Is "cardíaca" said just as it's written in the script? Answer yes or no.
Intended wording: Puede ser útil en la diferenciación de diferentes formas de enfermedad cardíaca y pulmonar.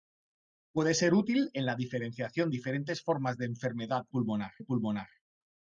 no